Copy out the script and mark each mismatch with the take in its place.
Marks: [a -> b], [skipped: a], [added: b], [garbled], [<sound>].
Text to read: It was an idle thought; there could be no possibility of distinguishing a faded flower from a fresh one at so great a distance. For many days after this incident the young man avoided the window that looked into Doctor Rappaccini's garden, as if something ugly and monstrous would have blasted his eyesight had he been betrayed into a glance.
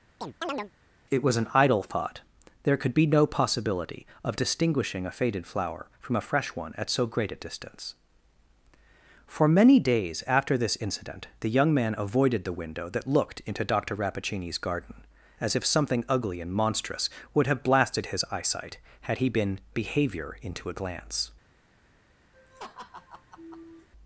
[chirp] It was an idle thought; there could be no possibility of distinguishing a faded flower from a fresh one at so great a distance. For many days after this incident the young man avoided the window that looked into Doctor Rappaccini's garden, as if something ugly and monstrous would have blasted his eyesight had he been [betrayed -> behavior] into a glance. [laugh]